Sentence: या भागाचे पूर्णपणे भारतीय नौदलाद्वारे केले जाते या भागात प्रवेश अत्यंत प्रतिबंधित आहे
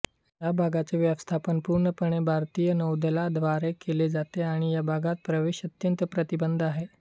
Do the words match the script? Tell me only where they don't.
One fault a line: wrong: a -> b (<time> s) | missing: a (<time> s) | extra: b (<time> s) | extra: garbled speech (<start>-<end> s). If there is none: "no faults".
extra: व्यवस्थापन (1.0 s)
extra: आणि (4.4 s)